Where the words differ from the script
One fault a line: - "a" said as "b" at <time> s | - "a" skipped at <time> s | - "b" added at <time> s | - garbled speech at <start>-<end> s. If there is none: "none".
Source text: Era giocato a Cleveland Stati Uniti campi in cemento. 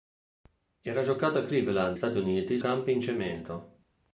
none